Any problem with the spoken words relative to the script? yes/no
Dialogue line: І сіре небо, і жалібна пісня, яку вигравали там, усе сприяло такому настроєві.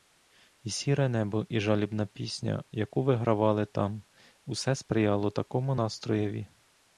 no